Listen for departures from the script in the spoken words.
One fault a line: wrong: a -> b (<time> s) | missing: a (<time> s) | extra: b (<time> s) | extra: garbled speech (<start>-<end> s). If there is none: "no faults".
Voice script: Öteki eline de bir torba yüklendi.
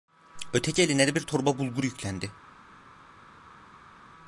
extra: bulgur (1.6 s)